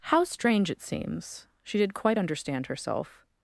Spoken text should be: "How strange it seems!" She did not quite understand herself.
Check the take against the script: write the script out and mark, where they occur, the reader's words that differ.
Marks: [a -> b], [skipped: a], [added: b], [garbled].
"How strange it seems!" She did [skipped: not] quite understand herself.